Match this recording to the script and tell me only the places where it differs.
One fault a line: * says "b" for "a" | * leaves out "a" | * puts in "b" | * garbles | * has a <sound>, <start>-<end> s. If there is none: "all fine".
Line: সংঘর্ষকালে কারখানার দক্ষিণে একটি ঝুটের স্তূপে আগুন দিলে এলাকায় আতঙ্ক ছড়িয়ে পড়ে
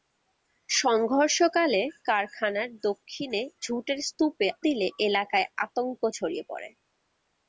* leaves out "একটি"
* leaves out "আগুন"